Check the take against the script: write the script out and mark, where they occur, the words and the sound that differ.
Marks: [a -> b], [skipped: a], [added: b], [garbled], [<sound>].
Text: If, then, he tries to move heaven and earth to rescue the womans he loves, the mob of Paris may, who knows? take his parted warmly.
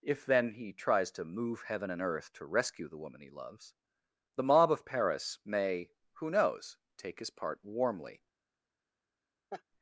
If, then, he tries to move heaven and earth to rescue the [womans -> woman] he loves, the mob of Paris may, who knows? take his [parted -> part] warmly. [laugh]